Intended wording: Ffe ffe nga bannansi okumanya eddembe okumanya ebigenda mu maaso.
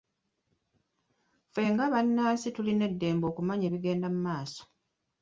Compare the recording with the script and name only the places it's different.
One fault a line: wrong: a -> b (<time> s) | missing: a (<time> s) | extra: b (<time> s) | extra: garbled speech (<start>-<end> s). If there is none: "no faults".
missing: ffe (1.6 s)
wrong: okumanya -> tulina (2.6 s)